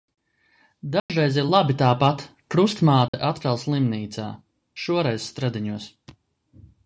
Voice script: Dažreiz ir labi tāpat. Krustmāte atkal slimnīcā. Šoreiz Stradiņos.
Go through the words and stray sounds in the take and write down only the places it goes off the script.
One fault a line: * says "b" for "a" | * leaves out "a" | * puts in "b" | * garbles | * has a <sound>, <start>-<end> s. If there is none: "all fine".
* has a dropout, 1.0-1.1 s
* has a dropout, 3.1-3.1 s